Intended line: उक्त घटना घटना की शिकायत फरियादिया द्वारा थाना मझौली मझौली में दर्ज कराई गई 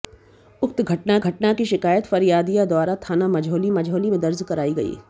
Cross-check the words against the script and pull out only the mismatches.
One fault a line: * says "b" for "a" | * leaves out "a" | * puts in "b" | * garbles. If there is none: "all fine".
all fine